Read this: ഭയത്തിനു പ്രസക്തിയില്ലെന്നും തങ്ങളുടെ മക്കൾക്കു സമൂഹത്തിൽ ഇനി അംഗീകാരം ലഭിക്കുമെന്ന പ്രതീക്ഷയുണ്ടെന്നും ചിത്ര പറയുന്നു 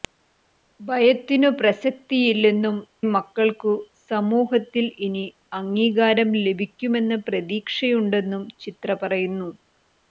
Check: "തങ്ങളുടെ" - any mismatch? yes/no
yes